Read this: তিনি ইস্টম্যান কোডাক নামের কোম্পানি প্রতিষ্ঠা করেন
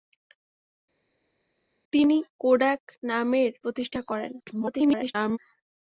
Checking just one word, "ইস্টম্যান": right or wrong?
wrong